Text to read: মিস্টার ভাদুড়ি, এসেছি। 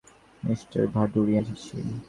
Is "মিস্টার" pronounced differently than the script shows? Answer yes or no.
no